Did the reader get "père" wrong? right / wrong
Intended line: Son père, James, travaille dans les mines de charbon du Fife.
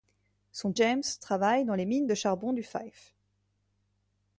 wrong